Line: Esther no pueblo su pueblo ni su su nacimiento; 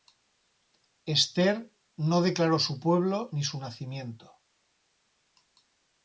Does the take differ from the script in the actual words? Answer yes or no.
yes